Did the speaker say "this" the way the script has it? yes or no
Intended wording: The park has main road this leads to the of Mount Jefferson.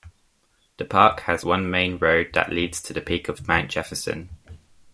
no